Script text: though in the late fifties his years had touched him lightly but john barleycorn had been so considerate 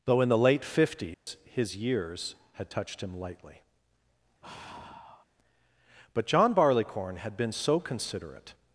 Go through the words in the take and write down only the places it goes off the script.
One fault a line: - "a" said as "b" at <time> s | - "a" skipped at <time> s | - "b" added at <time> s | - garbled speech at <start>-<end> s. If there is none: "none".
none